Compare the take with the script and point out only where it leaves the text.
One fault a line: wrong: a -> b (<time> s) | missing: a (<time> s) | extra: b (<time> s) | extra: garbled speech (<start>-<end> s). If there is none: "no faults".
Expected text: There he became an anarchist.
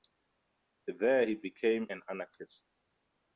no faults